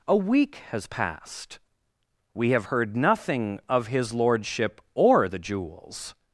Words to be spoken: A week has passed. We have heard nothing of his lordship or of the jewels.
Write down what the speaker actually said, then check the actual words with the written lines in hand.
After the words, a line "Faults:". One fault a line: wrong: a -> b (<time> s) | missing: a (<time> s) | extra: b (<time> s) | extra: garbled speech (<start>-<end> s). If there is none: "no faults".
A week has passed. We have heard nothing of his lordship or the jewels.
Faults:
missing: of (5.3 s)